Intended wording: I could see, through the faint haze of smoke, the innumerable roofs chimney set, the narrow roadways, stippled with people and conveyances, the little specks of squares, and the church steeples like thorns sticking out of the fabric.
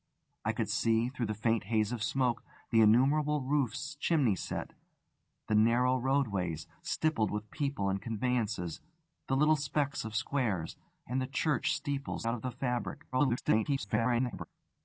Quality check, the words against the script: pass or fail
fail